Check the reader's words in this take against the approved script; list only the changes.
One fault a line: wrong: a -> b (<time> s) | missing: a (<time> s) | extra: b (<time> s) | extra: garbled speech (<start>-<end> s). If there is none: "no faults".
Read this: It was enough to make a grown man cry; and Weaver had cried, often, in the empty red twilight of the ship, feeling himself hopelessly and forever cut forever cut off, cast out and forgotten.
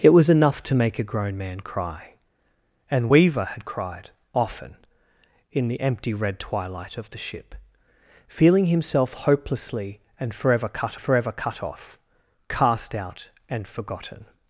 no faults